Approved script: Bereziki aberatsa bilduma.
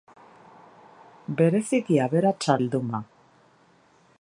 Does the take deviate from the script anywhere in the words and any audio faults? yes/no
no